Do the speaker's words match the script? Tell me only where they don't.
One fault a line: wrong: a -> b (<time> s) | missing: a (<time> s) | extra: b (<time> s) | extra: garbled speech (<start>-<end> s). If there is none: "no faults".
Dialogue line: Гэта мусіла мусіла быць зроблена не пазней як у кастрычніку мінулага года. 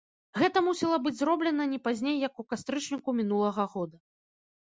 missing: мусіла (0.9 s)